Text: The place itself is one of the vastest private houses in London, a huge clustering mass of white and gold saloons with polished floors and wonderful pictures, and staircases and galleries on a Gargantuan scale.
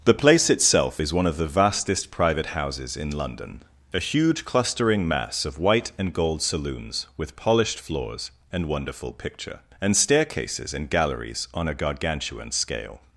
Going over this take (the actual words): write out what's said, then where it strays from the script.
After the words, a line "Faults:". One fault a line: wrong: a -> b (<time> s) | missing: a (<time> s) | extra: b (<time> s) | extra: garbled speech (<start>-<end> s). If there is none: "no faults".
The place itself is one of the vastest private houses in London, a huge clustering mass of white and gold saloons with polished floors and wonderful picture, and staircases and galleries on a Gargantuan scale.
Faults:
wrong: pictures -> picture (9.1 s)